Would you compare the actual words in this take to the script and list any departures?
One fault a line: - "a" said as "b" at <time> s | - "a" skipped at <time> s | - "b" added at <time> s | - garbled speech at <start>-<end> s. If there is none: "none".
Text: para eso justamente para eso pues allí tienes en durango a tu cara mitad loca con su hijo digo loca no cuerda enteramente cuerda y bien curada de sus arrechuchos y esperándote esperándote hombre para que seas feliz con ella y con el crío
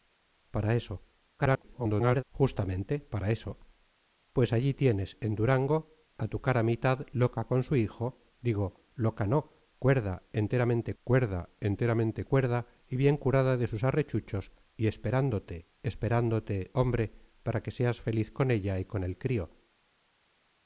- garbled speech at 1.4-2.2 s
- "enteramente cuerda" added at 11.6 s